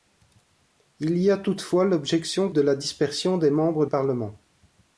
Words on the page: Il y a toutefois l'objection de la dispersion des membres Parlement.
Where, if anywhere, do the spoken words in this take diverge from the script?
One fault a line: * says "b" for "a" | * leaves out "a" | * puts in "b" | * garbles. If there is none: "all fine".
all fine